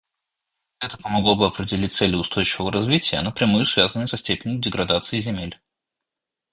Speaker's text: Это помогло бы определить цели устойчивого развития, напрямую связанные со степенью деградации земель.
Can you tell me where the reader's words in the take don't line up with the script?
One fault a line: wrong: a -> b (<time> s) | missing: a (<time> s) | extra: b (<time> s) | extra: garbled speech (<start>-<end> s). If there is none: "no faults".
no faults